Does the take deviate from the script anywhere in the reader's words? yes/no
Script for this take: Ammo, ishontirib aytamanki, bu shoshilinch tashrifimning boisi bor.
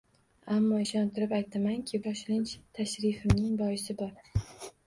yes